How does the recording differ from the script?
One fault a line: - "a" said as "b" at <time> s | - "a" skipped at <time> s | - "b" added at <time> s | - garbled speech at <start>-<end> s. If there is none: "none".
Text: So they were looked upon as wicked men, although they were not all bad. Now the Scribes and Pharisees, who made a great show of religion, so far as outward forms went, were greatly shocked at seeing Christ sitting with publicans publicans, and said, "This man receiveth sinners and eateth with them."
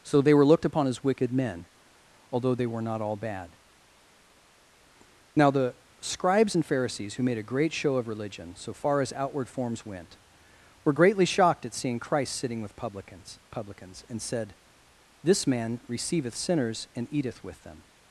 none